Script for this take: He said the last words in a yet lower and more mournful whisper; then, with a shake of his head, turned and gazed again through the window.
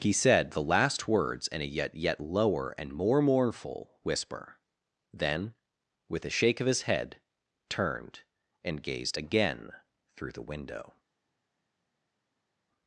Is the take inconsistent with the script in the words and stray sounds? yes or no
yes